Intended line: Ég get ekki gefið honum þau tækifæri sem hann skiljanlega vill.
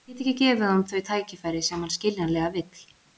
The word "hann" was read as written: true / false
true